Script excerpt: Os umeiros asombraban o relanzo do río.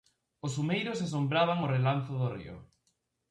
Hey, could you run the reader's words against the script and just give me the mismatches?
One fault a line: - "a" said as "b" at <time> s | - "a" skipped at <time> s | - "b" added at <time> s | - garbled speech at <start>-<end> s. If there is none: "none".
none